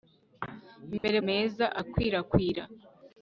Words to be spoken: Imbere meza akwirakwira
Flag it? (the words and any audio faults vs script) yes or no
yes